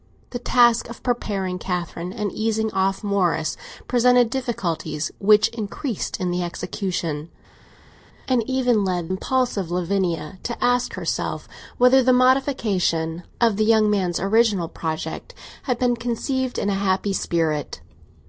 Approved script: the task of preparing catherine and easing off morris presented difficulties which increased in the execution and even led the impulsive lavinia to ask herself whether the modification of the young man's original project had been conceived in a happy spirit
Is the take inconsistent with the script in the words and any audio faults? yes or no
yes